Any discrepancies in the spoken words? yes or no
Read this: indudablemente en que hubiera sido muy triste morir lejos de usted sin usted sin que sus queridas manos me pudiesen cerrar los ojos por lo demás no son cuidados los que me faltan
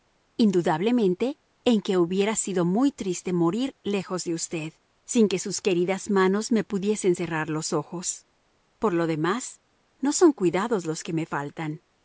yes